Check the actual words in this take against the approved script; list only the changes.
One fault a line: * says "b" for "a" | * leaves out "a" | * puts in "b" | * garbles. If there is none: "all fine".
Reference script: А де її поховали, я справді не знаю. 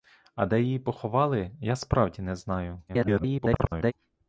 * garbles